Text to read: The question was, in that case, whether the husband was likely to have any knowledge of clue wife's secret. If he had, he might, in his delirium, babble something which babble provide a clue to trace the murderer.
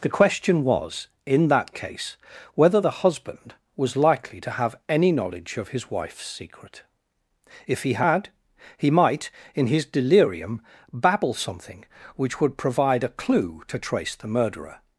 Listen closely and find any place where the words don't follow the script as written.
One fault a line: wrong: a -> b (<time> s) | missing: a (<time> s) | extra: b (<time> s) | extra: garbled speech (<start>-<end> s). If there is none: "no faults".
wrong: clue -> his (5.7 s)
wrong: babble -> would (12.4 s)